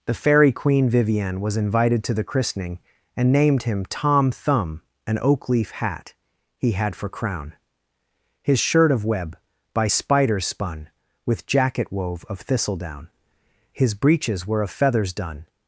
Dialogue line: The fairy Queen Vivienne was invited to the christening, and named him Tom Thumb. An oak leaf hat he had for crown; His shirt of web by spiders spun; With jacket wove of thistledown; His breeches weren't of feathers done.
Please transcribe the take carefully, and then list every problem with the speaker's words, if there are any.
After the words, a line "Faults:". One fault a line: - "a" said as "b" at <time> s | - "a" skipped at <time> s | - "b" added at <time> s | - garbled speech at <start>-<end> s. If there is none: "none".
The fairy Queen Vivienne was invited to the christening, and named him Tom Thumb. An oak leaf hat he had for crown; His shirt of web by spiders spun; With jacket wove of thistledown; His breeches were of feathers done.
Faults:
- "weren't" said as "were" at 14.5 s